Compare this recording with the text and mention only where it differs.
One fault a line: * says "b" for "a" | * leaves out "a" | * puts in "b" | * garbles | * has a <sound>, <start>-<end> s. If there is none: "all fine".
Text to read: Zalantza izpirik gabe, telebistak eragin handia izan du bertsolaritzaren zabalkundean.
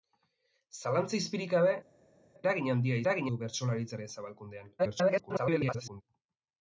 * leaves out "telebistak"
* says "eragin" for "izan"
* garbles